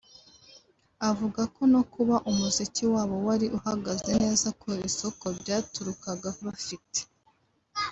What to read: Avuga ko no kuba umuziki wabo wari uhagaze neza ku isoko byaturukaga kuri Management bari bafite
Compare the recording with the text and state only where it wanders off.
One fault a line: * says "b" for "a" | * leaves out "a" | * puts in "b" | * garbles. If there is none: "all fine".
* leaves out "kuri Management bari"